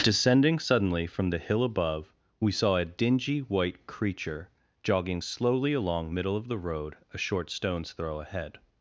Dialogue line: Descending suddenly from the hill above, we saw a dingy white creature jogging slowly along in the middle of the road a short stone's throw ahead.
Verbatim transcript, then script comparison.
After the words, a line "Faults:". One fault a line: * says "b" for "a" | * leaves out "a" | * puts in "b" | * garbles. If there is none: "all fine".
Descending suddenly from the hill above, we saw a dingy white creature jogging slowly along middle of the road a short stone's throw ahead.
Faults:
* leaves out "in the"